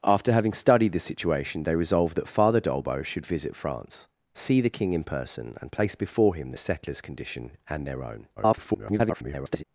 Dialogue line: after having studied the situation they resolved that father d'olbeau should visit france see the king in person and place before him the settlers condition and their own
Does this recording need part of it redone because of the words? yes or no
yes